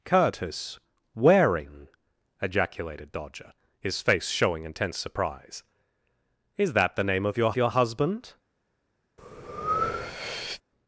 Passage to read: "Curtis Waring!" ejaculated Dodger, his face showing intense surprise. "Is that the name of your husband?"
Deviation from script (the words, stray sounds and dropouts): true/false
true